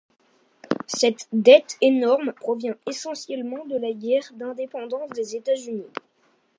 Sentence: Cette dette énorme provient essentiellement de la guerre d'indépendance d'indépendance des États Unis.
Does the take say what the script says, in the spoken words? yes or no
no